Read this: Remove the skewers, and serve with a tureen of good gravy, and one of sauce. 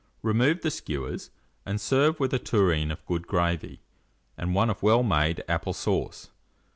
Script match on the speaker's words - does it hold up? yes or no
no